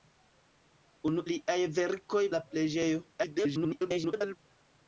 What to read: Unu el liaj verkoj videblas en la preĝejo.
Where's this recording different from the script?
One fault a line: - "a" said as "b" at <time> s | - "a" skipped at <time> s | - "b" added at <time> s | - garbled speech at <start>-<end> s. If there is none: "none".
- "el" skipped at 1.2 s
- "videblas en" skipped at 2.2 s
- garbled speech at 3.1-4.4 s